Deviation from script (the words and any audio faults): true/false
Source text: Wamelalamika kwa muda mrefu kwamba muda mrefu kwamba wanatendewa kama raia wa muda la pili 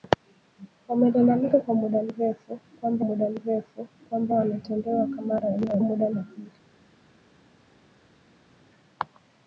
false